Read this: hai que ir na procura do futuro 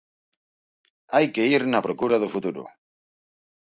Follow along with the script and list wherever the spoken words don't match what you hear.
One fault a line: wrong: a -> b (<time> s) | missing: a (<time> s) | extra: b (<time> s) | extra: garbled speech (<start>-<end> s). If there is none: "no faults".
no faults